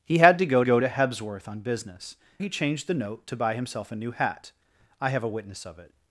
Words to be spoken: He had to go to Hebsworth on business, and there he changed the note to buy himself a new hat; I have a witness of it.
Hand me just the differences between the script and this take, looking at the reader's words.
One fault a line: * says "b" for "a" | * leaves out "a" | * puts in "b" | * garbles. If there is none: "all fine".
* puts in "go"
* leaves out "and there"